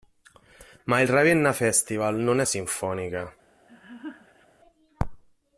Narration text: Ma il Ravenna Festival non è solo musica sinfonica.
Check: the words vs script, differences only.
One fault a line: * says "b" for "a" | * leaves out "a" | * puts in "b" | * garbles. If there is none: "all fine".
* leaves out "solo musica"